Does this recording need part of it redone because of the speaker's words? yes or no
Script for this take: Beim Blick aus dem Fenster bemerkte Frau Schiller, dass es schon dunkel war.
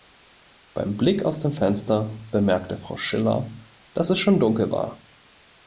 no